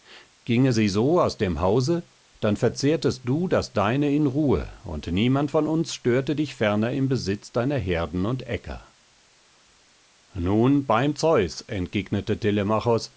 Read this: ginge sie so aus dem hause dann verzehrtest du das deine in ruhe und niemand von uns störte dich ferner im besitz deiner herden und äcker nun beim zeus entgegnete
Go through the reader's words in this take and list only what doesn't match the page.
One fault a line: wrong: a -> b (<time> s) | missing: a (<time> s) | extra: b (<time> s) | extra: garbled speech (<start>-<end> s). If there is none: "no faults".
no faults